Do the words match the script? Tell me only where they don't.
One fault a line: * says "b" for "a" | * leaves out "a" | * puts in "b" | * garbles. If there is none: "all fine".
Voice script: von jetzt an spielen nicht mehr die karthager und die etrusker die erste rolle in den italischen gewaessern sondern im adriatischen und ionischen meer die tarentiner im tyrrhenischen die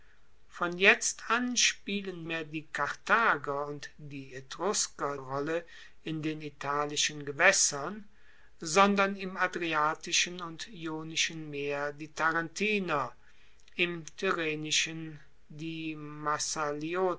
* leaves out "nicht"
* leaves out "die erste"